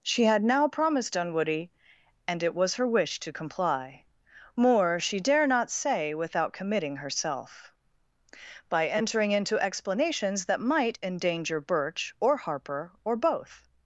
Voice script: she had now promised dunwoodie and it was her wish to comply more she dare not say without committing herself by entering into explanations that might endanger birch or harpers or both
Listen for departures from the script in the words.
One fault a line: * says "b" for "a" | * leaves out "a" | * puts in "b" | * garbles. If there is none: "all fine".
* says "harper" for "harpers"